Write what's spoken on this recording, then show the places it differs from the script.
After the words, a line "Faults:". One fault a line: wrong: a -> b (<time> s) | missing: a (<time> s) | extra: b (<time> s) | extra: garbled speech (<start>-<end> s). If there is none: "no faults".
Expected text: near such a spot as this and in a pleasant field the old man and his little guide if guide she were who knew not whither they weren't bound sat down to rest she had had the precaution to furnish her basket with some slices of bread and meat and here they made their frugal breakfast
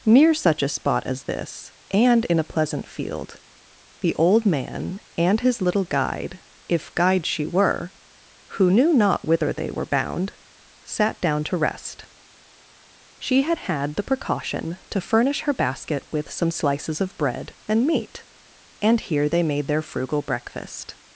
near such a spot as this and in a pleasant field the old man and his little guide if guide she were who knew not whither they were bound sat down to rest she had had the precaution to furnish her basket with some slices of bread and meat and here they made their frugal breakfast
Faults:
wrong: weren't -> were (9.7 s)